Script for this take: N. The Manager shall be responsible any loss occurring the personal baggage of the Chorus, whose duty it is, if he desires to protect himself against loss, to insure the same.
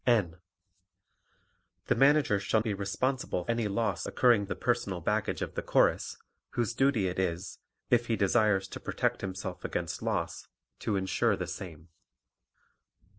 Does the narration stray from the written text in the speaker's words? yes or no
no